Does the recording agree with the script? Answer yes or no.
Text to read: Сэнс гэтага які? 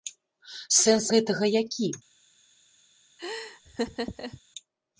yes